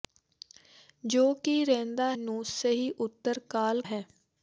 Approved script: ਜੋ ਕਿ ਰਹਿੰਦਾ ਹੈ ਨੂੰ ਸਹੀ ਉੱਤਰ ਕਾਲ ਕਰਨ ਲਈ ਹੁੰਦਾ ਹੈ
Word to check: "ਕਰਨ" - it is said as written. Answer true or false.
false